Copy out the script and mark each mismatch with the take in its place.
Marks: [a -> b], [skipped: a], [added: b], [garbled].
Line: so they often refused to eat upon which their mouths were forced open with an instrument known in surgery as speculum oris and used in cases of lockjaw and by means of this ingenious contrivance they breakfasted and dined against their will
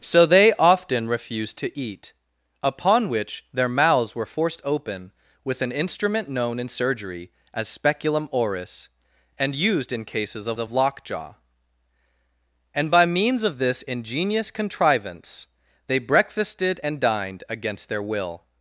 so they often refused to eat upon which their mouths were forced open with an instrument known in surgery as speculum oris and used in cases of [added: of] lockjaw and by means of this ingenious contrivance they breakfasted and dined against their will